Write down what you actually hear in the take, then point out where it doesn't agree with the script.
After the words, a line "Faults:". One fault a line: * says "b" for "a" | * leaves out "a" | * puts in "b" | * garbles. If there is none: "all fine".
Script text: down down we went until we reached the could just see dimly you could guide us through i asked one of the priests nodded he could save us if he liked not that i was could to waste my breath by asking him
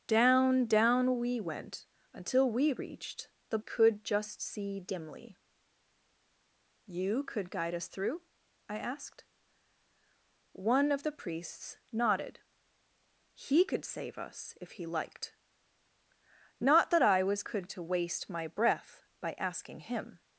down down we went until we reached the could just see dimly you could guide us through i asked one of the priests nodded he could save us if he liked not that i was could to waste my breath by asking him
Faults:
all fine